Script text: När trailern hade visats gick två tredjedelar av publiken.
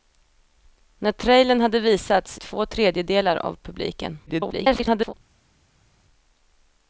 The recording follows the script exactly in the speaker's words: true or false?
false